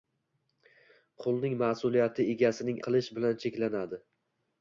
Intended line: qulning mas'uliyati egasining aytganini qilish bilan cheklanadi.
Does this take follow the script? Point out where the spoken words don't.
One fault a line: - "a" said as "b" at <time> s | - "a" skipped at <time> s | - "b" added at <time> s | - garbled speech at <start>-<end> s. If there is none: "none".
- "aytganini" skipped at 2.8 s